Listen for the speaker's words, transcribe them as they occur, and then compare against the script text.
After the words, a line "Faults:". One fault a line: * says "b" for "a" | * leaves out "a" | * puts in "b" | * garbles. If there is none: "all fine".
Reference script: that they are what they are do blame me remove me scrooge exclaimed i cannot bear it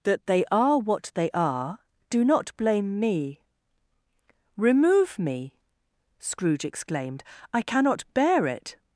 that they are what they are do not blame me remove me scrooge exclaimed i cannot bear it
Faults:
* puts in "not"